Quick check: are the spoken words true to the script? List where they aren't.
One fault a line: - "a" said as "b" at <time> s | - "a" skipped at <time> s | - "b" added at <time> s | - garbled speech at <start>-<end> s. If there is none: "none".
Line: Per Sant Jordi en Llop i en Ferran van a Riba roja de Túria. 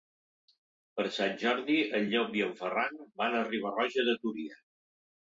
none